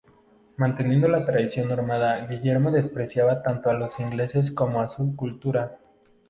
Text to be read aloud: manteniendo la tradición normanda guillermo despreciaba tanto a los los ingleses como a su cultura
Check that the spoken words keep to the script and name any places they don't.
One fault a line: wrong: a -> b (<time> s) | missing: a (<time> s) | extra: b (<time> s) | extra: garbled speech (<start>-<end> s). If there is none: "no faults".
missing: los (4.0 s)